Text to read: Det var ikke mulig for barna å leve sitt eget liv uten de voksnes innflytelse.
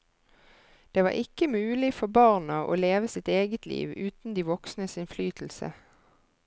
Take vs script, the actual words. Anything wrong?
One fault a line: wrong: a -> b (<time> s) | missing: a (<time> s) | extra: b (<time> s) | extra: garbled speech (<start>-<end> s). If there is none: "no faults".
no faults